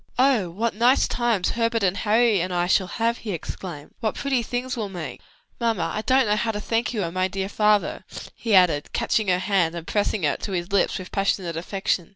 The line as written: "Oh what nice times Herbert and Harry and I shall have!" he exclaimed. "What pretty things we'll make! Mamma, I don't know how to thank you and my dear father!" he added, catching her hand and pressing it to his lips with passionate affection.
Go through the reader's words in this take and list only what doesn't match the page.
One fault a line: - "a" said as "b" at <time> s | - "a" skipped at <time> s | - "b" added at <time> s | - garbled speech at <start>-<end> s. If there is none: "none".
none